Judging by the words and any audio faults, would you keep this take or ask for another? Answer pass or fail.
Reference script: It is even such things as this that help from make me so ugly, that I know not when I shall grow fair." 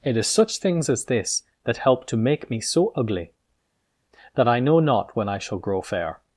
fail